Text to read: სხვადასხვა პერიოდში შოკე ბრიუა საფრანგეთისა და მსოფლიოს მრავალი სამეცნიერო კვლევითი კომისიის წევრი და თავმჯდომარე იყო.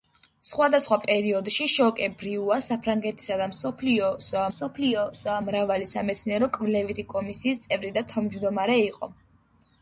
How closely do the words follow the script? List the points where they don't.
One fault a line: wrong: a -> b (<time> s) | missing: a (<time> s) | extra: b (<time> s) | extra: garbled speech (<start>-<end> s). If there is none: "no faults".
extra: მსოფლიოს (4.5 s)